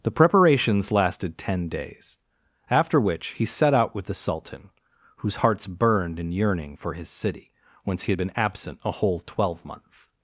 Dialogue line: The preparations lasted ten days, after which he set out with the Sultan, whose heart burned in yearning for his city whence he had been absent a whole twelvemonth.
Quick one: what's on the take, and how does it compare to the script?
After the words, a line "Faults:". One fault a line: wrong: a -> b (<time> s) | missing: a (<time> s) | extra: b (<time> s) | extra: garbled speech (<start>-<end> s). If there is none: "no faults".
The preparations lasted ten days, after which he set out with the Sultan, whose hearts burned in yearning for his city whence he had been absent a whole twelvemonth.
Faults:
wrong: heart -> hearts (5.4 s)